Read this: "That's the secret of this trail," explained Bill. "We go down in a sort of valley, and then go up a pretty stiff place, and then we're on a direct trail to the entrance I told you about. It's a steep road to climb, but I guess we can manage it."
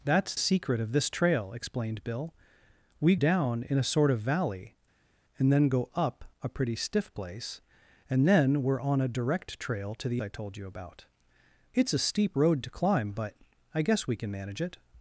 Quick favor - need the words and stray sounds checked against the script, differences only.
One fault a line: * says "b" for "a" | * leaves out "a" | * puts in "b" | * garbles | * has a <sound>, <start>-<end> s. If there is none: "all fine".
* leaves out "the"
* leaves out "go"
* leaves out "entrance"